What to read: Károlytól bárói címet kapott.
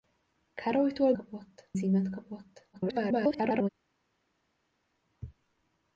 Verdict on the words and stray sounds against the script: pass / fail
fail